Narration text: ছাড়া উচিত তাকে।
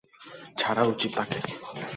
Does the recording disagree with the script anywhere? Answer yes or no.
no